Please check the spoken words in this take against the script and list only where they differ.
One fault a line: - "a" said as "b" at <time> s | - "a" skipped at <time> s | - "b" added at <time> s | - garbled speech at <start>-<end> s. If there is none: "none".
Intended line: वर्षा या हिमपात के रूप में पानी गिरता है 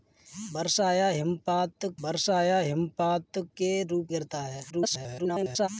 - "वर्षा या हिमपात" added at 2.0 s
- "में पानी" skipped at 4.1 s
- garbled speech at 4.7-5.7 s